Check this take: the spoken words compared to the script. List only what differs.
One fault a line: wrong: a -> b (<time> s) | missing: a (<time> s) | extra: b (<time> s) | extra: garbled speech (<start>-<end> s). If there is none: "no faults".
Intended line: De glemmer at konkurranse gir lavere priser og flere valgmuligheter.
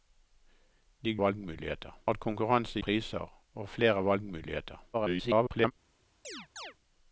wrong: glemmer -> valgmuligheter (1.2 s)
missing: gir lavere (2.8 s)
extra: garbled speech (4.9-5.7 s)